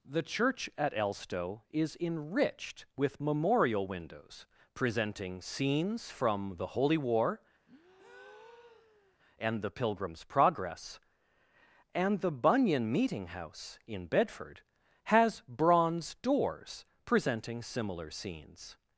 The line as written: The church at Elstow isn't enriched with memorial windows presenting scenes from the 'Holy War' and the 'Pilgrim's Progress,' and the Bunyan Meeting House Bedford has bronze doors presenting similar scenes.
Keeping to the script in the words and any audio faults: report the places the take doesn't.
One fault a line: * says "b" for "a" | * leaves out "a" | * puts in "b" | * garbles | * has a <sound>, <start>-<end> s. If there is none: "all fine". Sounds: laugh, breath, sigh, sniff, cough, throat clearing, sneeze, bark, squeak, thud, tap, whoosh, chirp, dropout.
* says "is" for "isn't"
* has a breath, 7.7-9.2 s
* puts in "in"